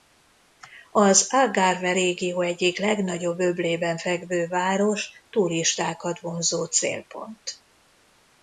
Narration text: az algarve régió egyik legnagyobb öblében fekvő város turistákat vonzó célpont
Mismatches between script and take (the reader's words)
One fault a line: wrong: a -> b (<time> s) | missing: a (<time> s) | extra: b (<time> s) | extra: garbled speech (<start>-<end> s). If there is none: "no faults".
no faults